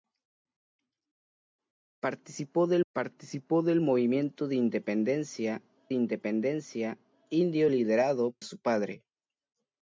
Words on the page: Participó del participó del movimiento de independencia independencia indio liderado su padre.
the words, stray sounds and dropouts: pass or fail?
pass